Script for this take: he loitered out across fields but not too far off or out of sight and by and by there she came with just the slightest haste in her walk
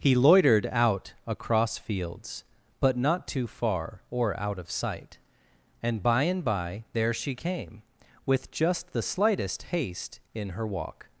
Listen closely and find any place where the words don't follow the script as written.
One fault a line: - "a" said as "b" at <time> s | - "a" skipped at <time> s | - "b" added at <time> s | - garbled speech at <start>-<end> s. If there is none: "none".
- "off" skipped at 4.0 s